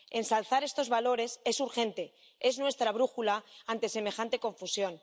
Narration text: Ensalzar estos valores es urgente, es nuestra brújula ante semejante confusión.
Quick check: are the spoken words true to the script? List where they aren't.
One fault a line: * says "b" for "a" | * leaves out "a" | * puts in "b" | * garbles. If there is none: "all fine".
all fine